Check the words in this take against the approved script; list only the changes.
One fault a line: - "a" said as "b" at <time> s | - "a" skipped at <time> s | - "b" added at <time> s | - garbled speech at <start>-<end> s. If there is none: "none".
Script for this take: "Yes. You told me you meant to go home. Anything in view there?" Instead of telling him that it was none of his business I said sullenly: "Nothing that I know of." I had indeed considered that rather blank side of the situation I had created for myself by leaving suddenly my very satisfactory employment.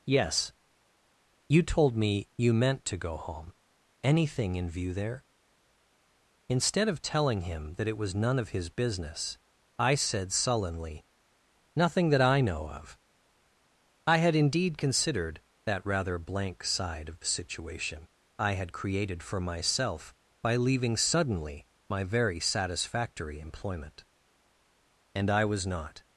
- "And I was not" added at 25.1 s